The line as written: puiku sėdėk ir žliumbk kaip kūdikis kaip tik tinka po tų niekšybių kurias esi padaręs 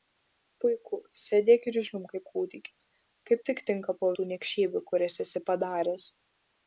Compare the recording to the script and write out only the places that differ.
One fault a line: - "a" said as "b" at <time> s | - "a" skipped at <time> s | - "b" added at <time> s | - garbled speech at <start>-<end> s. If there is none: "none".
none